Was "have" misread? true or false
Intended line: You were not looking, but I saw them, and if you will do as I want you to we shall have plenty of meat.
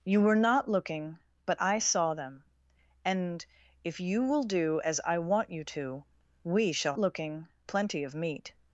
true